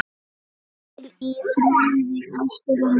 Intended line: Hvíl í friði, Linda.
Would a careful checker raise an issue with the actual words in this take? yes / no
yes